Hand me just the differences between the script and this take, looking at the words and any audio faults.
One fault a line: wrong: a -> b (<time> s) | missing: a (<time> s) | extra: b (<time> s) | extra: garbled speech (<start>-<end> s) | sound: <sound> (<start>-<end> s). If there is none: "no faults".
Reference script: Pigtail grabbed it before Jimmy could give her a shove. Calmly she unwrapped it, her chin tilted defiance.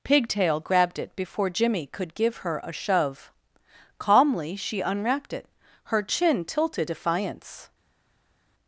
no faults